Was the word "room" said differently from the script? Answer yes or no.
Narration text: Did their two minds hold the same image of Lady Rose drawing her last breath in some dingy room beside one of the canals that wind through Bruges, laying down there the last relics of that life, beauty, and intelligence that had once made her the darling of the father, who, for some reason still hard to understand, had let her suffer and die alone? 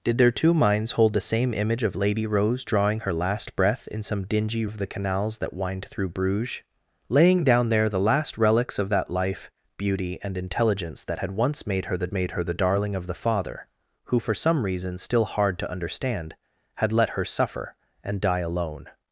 yes